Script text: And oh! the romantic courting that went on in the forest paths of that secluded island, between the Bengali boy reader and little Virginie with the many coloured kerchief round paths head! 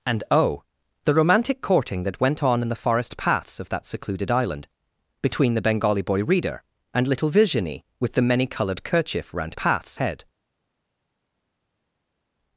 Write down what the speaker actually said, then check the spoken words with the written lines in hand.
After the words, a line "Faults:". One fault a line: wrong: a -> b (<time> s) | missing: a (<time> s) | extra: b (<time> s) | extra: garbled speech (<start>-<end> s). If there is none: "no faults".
And oh! the romantic courting that went on in the forest paths of that secluded island, between the Bengali boy reader and little Virginie with the many coloured kerchief round paths head!
Faults:
no faults